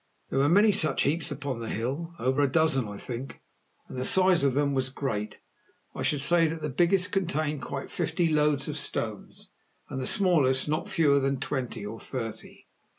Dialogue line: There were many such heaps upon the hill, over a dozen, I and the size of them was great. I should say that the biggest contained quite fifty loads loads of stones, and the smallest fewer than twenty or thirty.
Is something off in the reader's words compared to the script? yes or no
yes